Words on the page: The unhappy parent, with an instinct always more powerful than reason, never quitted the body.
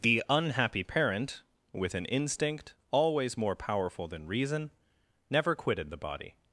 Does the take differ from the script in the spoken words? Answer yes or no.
no